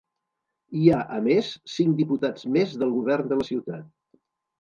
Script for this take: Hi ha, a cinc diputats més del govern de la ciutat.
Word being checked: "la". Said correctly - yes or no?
yes